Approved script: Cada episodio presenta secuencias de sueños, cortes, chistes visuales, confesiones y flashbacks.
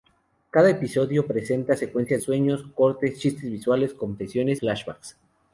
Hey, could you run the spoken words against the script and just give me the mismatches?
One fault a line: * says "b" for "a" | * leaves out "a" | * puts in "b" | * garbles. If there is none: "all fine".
* leaves out "de"
* leaves out "y"